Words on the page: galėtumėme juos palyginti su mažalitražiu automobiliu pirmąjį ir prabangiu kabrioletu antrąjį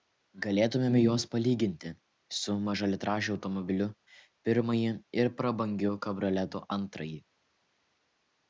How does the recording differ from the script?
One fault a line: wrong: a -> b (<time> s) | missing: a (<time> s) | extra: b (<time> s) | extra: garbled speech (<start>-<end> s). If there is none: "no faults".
no faults